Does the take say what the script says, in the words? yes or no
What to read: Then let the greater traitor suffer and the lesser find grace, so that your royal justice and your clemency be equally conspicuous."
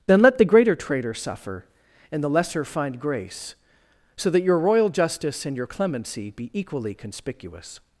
yes